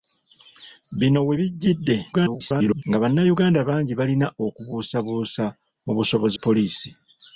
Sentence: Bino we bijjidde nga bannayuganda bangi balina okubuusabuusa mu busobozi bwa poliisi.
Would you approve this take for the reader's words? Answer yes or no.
no